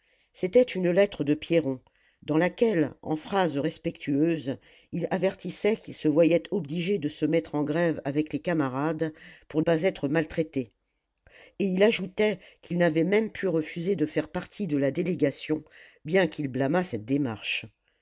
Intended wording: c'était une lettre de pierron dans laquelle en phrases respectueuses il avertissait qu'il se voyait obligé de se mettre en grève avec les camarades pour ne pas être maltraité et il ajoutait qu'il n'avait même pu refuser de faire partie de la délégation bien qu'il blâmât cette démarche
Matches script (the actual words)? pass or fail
fail